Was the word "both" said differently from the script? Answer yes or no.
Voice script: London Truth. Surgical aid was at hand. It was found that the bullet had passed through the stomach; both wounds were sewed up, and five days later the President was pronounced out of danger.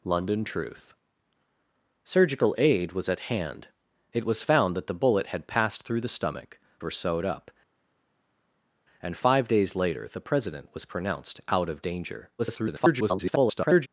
yes